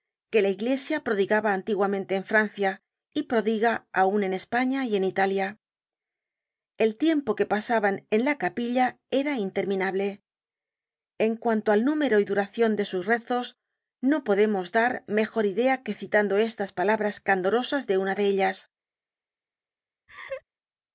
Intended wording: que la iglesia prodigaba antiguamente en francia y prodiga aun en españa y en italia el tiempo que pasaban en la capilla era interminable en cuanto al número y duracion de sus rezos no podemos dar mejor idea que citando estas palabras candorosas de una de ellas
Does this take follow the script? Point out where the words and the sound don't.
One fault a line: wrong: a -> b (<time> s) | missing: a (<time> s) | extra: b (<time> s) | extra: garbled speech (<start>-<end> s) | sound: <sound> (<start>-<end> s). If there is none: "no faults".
sound: laugh (20.1-20.4 s)